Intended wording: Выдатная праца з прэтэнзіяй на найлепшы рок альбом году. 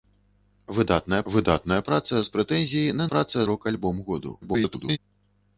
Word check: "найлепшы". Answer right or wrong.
wrong